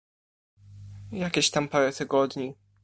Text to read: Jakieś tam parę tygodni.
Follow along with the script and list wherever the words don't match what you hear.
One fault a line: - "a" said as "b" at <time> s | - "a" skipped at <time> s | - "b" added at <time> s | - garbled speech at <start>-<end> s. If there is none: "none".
none